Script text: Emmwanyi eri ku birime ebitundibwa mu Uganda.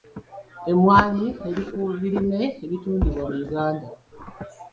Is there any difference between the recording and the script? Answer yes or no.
no